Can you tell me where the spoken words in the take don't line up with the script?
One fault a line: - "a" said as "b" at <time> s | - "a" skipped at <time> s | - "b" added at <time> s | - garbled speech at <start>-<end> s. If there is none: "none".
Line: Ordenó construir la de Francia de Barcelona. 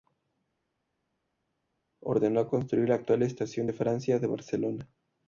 - "actual Estación" added at 2.9 s